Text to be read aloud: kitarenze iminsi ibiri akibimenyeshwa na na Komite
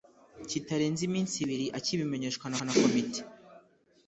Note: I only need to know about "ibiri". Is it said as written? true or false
true